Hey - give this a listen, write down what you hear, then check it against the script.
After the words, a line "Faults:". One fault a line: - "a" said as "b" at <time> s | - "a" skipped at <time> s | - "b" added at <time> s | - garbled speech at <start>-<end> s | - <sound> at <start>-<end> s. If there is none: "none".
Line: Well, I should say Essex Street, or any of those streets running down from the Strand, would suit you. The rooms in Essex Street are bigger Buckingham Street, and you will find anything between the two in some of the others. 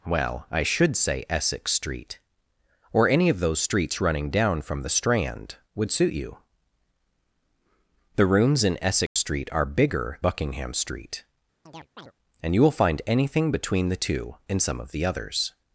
Well, I should say Essex Street, or any of those streets running down from the Strand, would suit you. The rooms in Essex Street are bigger Buckingham Street, and you will find anything between the two in some of the others.
Faults:
- dropout at 9.1-9.2 s
- chirp at 11.7-12.1 s